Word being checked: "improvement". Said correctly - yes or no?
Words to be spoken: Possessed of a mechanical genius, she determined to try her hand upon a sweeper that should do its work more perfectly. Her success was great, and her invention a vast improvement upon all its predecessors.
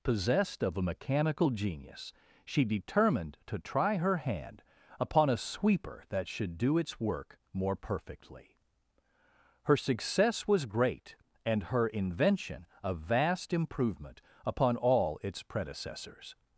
yes